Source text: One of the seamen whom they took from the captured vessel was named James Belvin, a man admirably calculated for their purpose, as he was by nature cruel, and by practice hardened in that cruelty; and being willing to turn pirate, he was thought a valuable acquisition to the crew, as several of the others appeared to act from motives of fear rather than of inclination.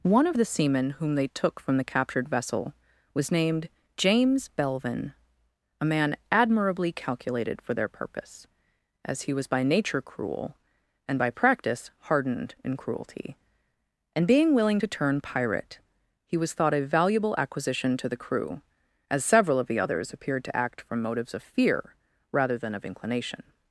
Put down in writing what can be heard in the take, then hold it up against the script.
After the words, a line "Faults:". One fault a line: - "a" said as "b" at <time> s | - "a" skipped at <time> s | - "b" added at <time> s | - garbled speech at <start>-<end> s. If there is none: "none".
One of the seamen whom they took from the captured vessel was named James Belvin, a man admirably calculated for their purpose, as he was by nature cruel, and by practice hardened in cruelty; and being willing to turn pirate, he was thought a valuable acquisition to the crew, as several of the others appeared to act from motives of fear rather than of inclination.
Faults:
- "that" skipped at 12.8 s